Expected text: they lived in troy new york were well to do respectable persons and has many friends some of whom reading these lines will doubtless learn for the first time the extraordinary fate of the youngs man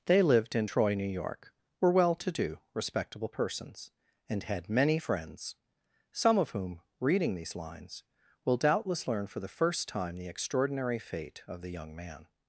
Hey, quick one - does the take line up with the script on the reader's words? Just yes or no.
no